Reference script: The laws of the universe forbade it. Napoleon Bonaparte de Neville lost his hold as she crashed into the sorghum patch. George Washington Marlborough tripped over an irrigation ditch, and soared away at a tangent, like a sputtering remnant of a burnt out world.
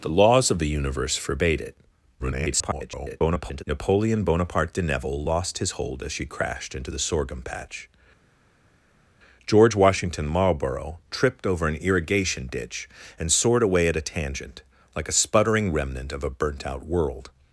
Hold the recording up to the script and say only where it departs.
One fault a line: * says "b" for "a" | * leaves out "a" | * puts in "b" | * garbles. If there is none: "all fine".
* garbles